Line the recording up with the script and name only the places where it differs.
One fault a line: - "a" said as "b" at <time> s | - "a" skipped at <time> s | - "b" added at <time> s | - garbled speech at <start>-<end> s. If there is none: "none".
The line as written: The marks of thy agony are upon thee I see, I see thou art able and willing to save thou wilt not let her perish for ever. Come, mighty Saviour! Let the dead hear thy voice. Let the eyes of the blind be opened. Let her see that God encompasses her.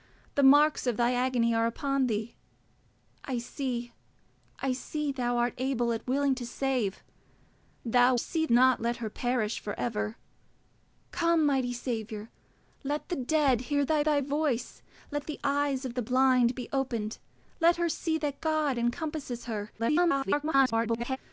- "wilt" said as "see" at 8.2 s
- "thy" added at 14.0 s
- garbled speech at 19.8-21.2 s